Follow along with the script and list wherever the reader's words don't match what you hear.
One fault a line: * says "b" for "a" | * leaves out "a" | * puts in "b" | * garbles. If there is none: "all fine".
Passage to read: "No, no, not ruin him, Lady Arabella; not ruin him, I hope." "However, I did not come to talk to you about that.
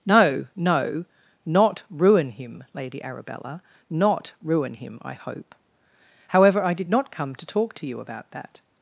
all fine